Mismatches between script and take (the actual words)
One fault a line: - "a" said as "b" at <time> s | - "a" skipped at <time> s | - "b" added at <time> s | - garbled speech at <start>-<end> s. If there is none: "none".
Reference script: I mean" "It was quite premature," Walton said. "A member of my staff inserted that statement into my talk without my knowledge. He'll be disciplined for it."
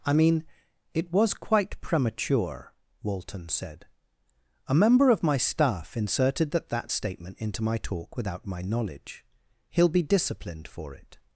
- "that" added at 6.7 s